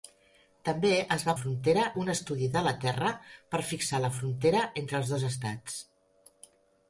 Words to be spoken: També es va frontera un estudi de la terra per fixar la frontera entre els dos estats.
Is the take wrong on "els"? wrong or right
right